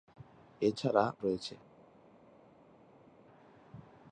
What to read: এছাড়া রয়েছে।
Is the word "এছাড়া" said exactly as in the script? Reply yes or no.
yes